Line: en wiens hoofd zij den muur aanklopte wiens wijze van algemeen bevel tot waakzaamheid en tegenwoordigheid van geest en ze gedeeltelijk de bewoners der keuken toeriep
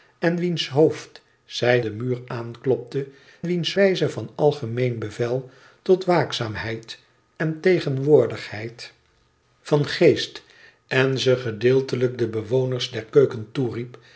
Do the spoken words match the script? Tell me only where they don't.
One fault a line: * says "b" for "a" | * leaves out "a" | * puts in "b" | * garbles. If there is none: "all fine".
all fine